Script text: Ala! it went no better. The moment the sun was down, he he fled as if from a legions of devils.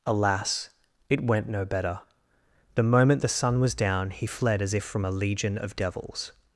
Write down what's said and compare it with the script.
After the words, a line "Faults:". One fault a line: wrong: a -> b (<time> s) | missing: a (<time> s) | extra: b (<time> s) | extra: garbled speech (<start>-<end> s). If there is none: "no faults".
Alas! it went no better. The moment the sun was down, he fled as if from a legion of devils.
Faults:
wrong: Ala -> Alas (0.1 s)
missing: he (4.2 s)
wrong: legions -> legion (5.1 s)